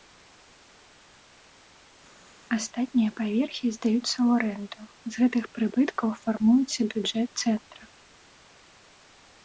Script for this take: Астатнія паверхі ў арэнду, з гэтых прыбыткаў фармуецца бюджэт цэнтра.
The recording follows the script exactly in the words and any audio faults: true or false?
false